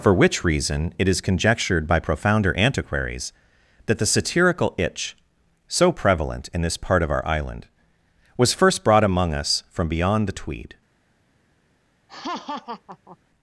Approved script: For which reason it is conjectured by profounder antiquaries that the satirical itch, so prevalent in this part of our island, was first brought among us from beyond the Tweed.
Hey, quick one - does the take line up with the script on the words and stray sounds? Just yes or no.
no